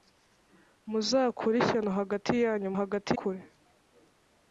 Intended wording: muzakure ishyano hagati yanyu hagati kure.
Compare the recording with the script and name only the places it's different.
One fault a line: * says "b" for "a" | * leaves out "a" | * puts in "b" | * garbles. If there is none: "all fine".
all fine